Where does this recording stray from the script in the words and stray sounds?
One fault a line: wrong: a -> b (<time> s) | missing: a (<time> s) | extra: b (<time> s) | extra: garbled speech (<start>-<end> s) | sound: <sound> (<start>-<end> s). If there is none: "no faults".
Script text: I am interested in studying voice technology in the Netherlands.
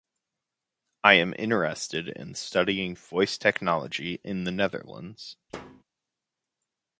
sound: thud (5.5-5.8 s)